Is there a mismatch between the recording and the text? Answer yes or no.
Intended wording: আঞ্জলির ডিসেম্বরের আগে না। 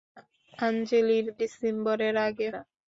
no